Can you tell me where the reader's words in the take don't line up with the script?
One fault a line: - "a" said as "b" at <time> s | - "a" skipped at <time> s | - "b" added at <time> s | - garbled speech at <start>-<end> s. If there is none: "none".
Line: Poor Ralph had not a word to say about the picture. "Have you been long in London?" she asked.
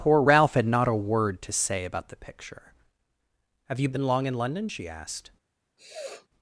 none